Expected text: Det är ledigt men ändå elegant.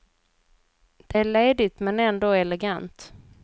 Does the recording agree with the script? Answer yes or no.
yes